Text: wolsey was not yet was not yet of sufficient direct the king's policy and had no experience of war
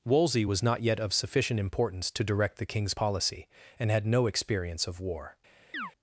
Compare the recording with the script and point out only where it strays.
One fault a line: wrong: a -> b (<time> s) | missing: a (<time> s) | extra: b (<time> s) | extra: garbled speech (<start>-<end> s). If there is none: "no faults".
wrong: was not yet of sufficient -> of sufficient importance to (1.0 s)